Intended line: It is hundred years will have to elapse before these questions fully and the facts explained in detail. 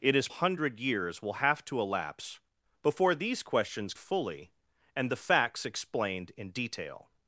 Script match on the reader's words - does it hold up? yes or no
yes